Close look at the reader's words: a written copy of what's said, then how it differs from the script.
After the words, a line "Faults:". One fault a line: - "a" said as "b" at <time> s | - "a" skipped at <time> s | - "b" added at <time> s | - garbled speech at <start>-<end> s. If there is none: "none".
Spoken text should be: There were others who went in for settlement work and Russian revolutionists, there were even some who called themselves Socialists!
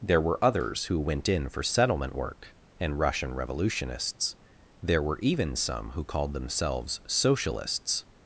There were others who went in for settlement work and Russian revolutionists, there were even some who called themselves Socialists!
Faults:
none